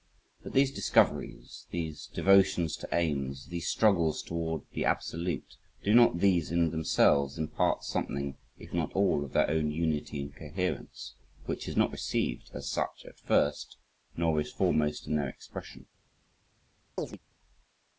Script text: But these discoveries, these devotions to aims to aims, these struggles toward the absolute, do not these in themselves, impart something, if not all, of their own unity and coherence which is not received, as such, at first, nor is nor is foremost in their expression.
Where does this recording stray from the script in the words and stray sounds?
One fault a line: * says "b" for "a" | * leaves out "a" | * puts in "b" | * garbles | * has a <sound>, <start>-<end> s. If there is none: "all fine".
* leaves out "to aims"
* leaves out "nor is"
* has a chirp, 17.0-17.2 s